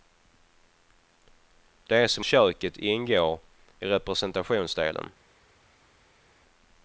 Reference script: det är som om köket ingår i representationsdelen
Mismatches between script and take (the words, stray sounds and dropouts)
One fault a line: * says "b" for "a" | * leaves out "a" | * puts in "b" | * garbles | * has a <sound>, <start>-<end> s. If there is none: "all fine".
* leaves out "om"